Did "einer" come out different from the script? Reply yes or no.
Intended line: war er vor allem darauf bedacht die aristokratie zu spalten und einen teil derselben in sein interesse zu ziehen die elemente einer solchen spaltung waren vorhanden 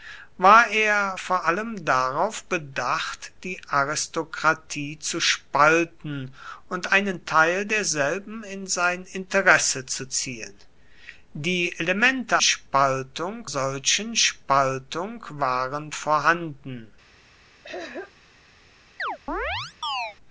yes